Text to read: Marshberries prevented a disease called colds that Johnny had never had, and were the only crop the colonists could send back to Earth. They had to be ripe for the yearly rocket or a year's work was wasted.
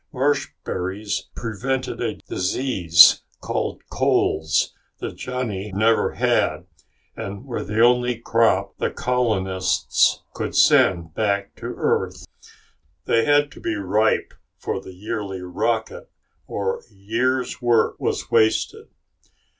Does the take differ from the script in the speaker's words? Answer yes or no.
yes